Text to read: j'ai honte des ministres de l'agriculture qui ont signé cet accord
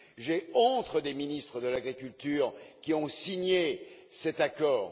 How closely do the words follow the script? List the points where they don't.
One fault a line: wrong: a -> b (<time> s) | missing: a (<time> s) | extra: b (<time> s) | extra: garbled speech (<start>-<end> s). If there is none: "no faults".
no faults